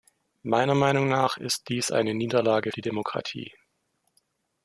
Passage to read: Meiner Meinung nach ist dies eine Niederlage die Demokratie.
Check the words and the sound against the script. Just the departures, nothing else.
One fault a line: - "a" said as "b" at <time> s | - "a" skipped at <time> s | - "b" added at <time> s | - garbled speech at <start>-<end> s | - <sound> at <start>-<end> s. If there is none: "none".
none